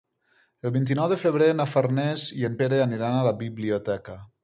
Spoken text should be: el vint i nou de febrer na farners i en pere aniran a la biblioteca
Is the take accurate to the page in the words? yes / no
yes